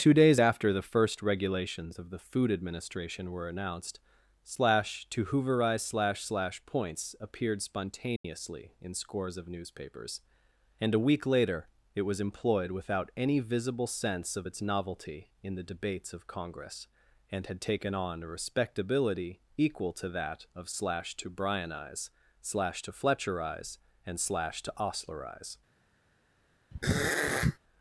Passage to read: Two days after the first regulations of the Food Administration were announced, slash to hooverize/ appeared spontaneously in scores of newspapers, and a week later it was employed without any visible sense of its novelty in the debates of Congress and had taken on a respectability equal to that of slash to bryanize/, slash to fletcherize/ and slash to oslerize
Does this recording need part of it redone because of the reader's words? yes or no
yes